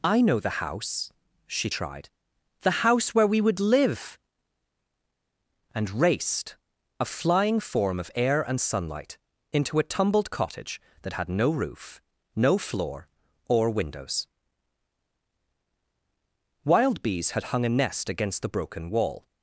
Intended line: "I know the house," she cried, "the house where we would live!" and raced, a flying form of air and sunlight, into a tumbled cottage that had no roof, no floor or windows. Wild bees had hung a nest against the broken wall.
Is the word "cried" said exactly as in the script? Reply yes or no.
no